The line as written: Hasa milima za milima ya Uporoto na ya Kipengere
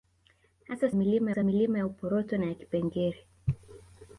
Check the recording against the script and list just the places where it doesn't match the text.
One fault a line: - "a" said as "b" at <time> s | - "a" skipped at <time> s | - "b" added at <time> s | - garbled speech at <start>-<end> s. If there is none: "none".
none